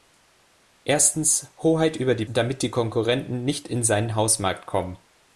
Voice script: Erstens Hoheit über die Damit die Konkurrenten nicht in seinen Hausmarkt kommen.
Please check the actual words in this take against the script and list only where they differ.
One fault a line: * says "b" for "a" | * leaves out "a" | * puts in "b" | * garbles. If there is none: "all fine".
all fine